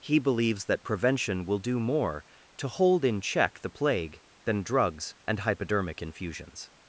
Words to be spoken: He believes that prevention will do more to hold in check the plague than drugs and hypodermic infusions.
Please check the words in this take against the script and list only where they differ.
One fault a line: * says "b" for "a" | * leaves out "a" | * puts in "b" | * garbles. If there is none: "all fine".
all fine